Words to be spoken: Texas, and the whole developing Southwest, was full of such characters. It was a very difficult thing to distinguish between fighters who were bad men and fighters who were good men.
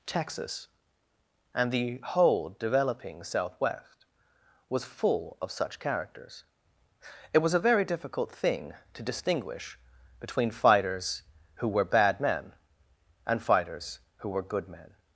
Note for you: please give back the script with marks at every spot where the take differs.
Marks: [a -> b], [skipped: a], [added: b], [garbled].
Texas, and the whole developing Southwest, was full of such characters. It was a very difficult thing to distinguish between fighters who were bad men and fighters who were good men.